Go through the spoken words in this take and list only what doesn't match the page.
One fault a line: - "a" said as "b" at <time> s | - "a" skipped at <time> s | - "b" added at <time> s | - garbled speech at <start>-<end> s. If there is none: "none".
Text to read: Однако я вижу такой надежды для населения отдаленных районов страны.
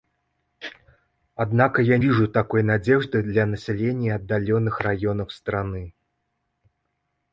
none